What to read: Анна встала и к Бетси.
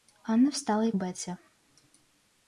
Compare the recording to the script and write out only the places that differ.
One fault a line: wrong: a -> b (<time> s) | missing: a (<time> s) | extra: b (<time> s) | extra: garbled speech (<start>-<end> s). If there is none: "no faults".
no faults